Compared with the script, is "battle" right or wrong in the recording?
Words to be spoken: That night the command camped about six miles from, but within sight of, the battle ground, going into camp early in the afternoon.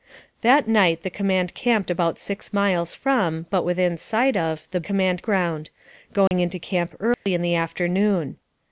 wrong